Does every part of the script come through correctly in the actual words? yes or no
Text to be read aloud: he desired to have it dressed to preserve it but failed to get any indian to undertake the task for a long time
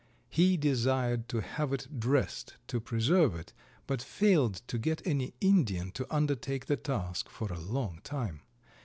yes